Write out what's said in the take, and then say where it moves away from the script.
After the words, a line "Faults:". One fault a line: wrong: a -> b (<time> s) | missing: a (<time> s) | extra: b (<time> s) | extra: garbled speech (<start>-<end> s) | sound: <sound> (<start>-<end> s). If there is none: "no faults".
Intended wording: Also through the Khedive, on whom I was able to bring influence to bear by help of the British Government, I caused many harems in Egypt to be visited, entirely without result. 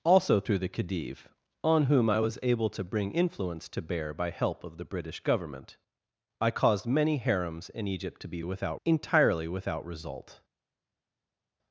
Also through the Khedive, on whom I was able to bring influence to bear by help of the British Government, I caused many harems in Egypt to be without, entirely without result.
Faults:
wrong: visited -> without (8.4 s)